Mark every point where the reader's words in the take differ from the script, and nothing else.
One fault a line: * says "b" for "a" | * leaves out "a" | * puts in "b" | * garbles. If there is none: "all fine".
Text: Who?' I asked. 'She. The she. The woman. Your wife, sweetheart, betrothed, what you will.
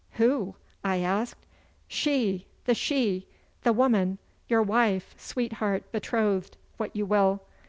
all fine